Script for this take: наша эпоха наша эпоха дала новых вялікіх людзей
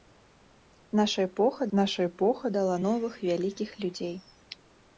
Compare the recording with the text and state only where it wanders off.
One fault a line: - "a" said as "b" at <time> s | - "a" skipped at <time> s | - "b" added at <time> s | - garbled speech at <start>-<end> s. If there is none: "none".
none